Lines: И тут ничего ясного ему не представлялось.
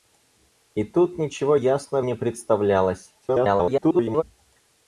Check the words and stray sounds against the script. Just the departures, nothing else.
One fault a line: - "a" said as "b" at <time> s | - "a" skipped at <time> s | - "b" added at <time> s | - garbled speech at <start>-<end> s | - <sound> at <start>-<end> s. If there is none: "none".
- "ему" skipped at 2.1 s
- garbled speech at 3.2-4.2 s